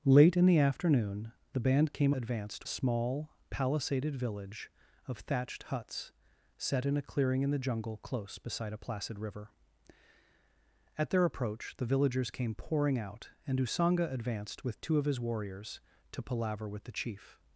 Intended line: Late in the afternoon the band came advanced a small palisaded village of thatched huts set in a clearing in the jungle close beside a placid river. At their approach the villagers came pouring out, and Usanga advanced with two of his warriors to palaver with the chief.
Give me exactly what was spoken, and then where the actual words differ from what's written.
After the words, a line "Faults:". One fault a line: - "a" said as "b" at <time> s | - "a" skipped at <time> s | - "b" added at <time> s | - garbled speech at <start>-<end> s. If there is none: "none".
Late in the afternoon the band came advanced a small palisaded village of thatched huts set in a clearing in the jungle close beside a placid river. At their approach the villagers came pouring out, and Usanga advanced with two of his warriors to palaver with the chief.
Faults:
none